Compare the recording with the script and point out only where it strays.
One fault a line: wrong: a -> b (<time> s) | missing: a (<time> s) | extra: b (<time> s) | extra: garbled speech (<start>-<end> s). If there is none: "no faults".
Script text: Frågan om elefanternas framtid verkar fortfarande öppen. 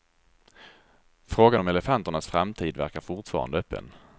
no faults